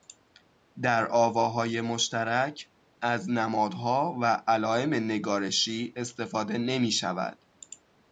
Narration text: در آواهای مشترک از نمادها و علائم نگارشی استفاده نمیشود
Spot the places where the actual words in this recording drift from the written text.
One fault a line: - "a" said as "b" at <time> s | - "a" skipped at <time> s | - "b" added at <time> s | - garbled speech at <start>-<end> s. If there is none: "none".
none